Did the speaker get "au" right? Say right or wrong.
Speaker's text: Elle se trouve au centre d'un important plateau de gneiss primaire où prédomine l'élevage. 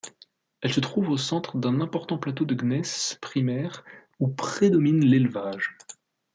right